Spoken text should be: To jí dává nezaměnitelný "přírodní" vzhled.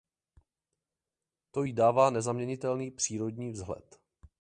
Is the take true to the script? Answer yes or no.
yes